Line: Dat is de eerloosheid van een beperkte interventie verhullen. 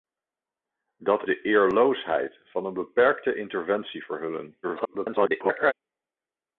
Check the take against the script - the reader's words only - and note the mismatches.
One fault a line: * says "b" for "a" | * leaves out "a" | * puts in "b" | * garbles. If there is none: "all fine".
* leaves out "is"
* garbles